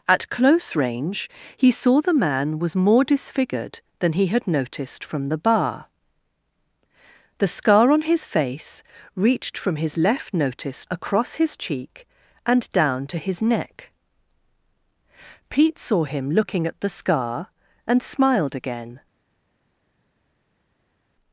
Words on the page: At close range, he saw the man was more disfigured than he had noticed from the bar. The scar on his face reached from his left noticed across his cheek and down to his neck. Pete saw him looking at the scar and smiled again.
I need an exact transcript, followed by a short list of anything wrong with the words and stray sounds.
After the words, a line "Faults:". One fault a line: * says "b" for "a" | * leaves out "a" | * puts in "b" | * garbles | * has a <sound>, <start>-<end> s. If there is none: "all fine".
At close range, he saw the man was more disfigured than he had noticed from the bar. The scar on his face reached from his left noticed across his cheek and down to his neck. Pete saw him looking at the scar and smiled again.
Faults:
all fine